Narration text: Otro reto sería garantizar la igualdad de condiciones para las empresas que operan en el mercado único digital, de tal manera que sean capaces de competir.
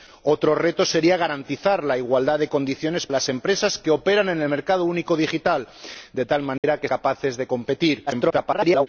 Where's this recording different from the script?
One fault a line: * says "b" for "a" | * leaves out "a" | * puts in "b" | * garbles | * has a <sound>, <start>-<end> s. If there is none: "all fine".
* leaves out "para"
* has a dropout, 6.6-6.6 s
* leaves out "sean"
* garbles